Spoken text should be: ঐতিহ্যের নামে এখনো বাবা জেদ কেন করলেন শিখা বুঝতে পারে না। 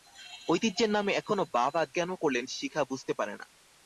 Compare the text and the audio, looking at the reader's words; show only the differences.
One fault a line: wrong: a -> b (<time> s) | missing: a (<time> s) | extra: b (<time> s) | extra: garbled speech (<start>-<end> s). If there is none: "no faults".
missing: জেদ (1.8 s)